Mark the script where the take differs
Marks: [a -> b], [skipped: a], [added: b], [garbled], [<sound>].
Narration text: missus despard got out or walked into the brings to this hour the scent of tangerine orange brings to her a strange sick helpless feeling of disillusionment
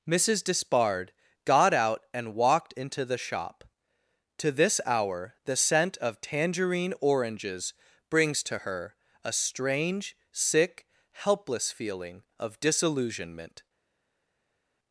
missus despard got out [or -> and] walked into the [brings -> shop] to this hour the scent of tangerine [orange -> oranges] brings to her a strange sick helpless feeling of disillusionment